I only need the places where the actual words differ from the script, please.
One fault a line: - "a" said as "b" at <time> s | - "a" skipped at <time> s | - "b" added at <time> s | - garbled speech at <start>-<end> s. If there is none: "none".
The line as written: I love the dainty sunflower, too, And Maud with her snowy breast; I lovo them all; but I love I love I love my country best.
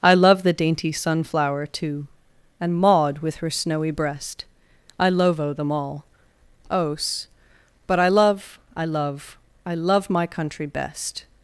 - "os" added at 6.7 s